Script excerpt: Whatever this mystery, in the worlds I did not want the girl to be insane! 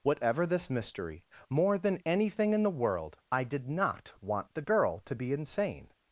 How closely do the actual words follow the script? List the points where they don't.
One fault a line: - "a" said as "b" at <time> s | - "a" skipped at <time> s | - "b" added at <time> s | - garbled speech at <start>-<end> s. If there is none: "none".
- "more than anything" added at 1.5 s
- "worlds" said as "world" at 2.7 s